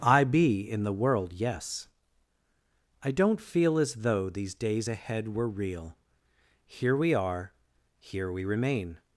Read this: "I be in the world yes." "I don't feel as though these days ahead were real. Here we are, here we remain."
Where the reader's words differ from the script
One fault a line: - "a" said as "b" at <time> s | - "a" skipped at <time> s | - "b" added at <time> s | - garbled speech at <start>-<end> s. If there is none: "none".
none